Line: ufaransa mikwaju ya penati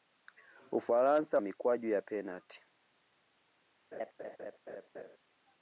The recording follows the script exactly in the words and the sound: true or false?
false